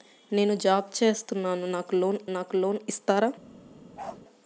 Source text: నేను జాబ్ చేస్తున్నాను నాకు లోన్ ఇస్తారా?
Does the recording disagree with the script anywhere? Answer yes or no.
yes